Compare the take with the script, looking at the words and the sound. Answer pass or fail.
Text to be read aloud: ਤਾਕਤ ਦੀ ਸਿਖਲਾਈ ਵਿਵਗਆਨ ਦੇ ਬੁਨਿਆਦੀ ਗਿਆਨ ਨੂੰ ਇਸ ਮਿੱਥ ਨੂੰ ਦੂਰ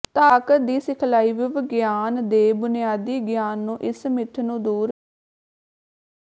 pass